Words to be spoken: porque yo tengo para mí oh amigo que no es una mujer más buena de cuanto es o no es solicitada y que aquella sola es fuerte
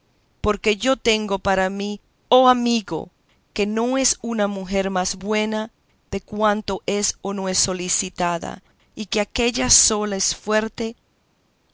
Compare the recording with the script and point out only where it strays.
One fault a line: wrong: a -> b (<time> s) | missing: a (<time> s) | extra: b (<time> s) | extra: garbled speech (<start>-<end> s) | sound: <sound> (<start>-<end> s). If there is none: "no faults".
no faults